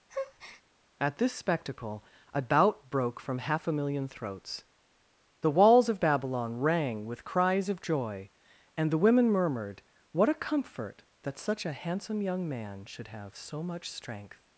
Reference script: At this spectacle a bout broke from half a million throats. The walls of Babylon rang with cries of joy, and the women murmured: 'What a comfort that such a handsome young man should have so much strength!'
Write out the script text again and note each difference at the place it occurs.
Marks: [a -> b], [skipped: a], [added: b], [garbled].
At this spectacle a bout broke from half a million throats. The walls of Babylon rang with cries of joy, and the women murmured: 'What a comfort that such a handsome young man should have so much strength!'